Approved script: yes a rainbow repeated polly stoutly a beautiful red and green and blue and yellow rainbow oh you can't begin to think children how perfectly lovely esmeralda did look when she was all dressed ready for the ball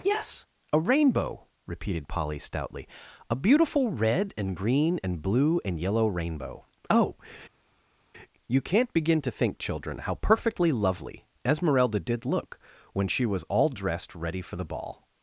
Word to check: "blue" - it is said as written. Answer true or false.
true